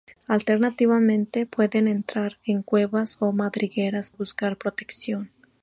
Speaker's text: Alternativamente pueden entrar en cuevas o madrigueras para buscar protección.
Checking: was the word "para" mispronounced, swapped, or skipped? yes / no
yes